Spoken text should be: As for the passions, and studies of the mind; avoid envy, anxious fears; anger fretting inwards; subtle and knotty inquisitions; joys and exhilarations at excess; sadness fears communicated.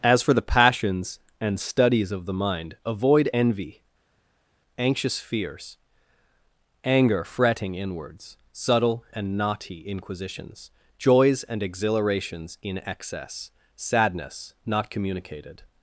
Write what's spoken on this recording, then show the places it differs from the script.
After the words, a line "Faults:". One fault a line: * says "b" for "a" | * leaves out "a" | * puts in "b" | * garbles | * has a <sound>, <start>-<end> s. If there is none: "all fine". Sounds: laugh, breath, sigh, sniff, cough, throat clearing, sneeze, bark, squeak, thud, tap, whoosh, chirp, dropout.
As for the passions, and studies of the mind; avoid envy, anxious fears; anger fretting inwards; subtle and knotty inquisitions; joys and exhilarations in excess; sadness not communicated.
Faults:
* says "in" for "at"
* says "not" for "fears"